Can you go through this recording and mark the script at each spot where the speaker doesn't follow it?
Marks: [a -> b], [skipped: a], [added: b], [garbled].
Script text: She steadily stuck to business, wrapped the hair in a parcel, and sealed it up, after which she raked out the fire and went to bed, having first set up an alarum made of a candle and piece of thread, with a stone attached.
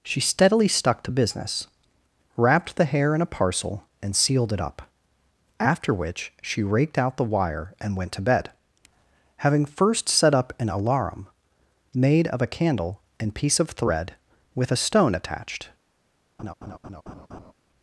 She steadily stuck to business, wrapped the hair in a parcel, and sealed it up, after which she raked out the [fire -> wire] and went to bed, having first set up an alarum made of a candle and piece of thread, with a stone attached.